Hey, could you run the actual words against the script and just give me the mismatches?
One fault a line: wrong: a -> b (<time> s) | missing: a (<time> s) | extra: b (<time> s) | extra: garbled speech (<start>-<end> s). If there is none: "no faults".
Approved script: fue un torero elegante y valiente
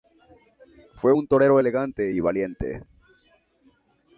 no faults